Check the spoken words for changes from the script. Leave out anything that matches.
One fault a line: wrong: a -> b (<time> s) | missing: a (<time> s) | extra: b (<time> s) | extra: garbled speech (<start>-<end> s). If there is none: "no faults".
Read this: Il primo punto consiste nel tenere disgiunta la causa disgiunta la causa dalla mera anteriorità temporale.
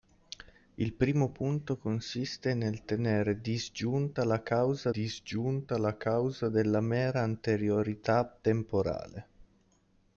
no faults